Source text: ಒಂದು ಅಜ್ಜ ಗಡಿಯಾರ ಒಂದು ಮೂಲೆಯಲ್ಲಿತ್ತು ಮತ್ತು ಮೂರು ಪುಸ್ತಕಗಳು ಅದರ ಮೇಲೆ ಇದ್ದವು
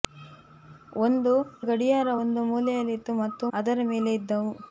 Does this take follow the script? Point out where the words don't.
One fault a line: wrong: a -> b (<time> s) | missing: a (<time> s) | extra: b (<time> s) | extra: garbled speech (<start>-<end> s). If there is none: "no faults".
missing: ಅಜ್ಜ (1.3 s)
missing: ಮೂರು ಪುಸ್ತಕಗಳು (3.5 s)